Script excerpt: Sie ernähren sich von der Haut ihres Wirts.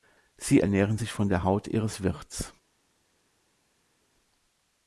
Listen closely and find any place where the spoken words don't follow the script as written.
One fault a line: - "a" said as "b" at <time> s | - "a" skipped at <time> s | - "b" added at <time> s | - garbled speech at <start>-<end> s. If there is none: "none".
none